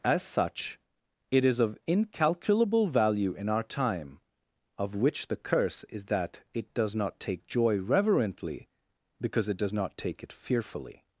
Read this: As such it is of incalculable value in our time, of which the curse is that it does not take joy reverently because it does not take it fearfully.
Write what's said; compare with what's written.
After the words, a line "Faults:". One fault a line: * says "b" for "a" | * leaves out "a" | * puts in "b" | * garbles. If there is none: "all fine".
As such it is of incalculable value in our time, of which the curse is that it does not take joy reverently because it does not take it fearfully.
Faults:
all fine